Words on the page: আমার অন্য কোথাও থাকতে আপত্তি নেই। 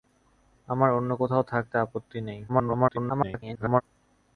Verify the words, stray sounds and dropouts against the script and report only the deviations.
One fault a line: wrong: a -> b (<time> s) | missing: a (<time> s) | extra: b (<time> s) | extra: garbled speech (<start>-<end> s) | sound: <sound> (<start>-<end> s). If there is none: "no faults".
extra: garbled speech (2.5-3.8 s)